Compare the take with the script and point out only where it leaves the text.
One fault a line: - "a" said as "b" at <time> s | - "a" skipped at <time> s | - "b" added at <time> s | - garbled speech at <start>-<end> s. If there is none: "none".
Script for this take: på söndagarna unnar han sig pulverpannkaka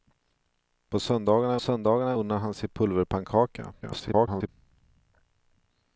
- "söndagarna" added at 1.6 s
- garbled speech at 3.8-4.5 s